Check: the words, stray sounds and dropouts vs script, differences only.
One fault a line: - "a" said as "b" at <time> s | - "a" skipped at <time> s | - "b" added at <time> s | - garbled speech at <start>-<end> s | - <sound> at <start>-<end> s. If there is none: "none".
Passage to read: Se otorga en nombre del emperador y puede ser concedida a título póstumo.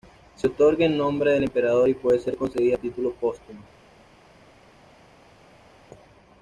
none